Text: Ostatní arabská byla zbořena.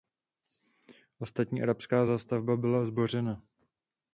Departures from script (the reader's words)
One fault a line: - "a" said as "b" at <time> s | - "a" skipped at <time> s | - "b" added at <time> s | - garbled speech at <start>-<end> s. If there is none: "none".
- "zástavba" added at 2.0 s